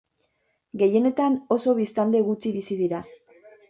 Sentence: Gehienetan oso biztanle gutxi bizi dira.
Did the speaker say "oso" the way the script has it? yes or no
yes